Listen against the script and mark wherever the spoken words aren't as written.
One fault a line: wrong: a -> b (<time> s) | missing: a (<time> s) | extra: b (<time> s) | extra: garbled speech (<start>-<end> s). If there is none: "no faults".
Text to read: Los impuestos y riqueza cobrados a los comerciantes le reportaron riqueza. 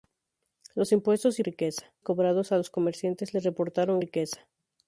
no faults